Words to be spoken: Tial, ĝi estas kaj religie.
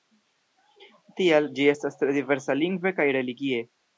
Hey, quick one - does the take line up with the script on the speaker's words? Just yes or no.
no